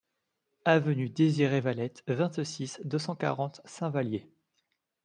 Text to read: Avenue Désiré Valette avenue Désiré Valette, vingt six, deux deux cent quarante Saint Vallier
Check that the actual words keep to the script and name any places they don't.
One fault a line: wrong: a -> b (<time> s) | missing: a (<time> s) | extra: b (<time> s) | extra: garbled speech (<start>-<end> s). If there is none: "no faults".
missing: avenue Désiré Valette (2.0 s)
missing: deux (3.0 s)